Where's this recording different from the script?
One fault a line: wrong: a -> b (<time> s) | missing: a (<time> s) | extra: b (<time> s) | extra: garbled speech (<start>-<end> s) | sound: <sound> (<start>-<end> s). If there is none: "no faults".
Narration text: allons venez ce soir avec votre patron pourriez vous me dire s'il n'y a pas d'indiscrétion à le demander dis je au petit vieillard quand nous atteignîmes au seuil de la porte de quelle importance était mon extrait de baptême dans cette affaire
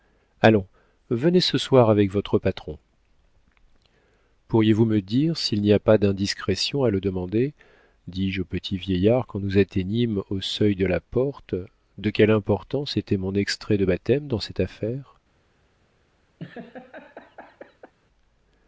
sound: laugh (16.4-17.9 s)